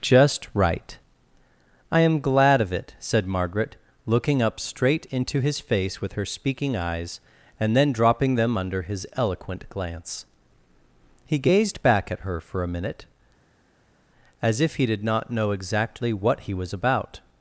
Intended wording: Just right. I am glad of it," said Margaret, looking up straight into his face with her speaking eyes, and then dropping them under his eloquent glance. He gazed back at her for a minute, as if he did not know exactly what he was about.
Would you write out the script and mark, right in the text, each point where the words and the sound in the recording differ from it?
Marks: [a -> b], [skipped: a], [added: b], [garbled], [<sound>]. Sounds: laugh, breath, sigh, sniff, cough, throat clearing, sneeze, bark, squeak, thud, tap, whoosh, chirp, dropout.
Just right. I am glad of it," said Margaret, looking up straight into his face with her speaking eyes, and then dropping them under his eloquent glance. He gazed back at her for a minute, as if he did not know exactly what he was about.